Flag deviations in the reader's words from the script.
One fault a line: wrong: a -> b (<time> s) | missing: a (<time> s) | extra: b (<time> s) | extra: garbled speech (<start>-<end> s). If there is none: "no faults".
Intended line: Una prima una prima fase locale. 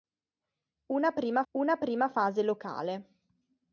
no faults